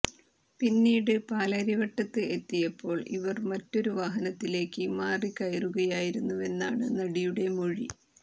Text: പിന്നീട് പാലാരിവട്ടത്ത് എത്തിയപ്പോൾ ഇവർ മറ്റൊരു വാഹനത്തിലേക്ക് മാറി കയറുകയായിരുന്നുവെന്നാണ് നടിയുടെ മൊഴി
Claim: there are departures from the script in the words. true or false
false